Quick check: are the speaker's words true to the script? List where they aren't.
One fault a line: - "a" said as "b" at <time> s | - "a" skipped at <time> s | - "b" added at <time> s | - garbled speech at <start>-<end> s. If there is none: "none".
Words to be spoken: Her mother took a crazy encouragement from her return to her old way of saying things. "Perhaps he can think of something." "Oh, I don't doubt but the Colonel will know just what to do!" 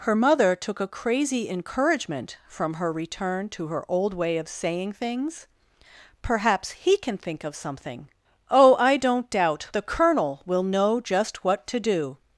- "but" skipped at 9.7 s